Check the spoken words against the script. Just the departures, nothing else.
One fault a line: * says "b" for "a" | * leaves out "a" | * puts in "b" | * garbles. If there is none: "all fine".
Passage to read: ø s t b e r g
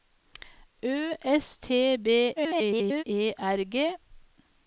* garbles